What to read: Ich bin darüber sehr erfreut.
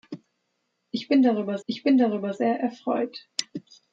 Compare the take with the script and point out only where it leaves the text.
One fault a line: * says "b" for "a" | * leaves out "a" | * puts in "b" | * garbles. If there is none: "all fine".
* puts in "ich bin darüber"